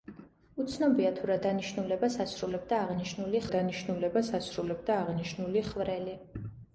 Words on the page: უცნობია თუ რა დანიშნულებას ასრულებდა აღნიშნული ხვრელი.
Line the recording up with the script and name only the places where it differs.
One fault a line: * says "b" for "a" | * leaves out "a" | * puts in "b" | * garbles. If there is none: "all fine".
* puts in "დანიშნულებას ასრულებდა აღნიშნული"